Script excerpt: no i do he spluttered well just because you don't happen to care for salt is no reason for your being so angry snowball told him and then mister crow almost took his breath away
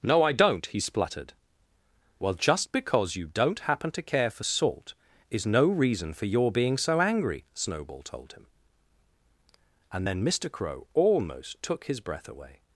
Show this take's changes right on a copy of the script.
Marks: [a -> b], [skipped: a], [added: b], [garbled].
no i [do -> don't] he spluttered well just because you don't happen to care for salt is no reason for your being so angry snowball told him and then mister crow almost took his breath away